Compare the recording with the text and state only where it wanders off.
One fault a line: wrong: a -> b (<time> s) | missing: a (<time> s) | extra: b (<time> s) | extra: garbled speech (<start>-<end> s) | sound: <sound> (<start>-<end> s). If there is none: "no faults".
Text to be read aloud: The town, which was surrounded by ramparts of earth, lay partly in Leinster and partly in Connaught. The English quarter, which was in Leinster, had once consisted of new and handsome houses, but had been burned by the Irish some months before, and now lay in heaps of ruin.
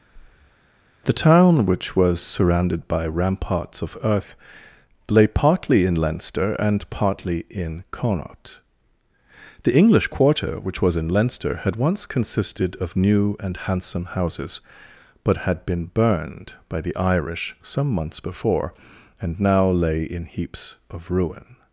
sound: breath (0.1-0.6 s)